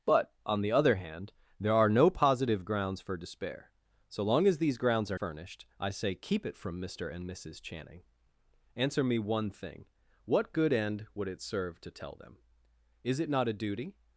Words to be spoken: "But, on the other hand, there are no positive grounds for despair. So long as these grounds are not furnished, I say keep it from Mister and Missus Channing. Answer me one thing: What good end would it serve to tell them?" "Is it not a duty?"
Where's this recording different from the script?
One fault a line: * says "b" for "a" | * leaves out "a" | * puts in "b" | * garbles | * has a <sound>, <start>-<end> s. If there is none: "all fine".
* leaves out "not"